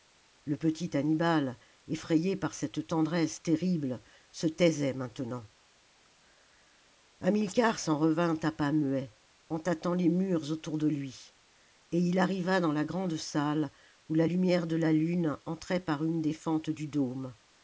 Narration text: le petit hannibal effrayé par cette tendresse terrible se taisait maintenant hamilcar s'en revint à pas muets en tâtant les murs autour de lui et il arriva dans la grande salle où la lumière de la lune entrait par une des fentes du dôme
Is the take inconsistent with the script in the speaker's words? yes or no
no